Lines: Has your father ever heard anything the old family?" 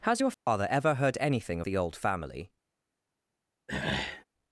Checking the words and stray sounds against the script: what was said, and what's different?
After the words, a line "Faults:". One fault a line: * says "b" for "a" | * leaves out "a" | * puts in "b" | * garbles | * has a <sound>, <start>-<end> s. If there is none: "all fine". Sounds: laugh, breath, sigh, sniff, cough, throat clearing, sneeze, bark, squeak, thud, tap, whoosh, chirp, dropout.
Has your father ever heard anything the old family?"
Faults:
* has a dropout, 0.3-0.5 s
* has a throat clearing, 3.7-4.2 s